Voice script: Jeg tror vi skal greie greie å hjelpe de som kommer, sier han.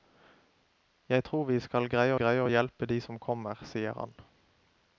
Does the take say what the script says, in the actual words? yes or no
yes